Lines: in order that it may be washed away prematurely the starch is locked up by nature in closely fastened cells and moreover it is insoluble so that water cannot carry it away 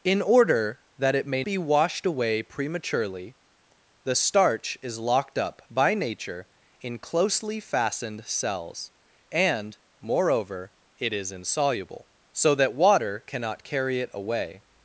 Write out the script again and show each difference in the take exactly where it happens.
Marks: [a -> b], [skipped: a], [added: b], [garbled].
in order that it may be washed away prematurely the starch is locked up by nature in closely fastened cells and moreover it is insoluble so that water cannot carry it away